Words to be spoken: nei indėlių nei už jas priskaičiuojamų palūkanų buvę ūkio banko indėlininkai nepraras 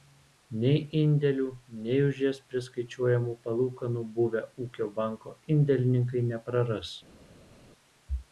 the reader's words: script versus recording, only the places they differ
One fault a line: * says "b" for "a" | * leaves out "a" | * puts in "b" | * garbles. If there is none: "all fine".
all fine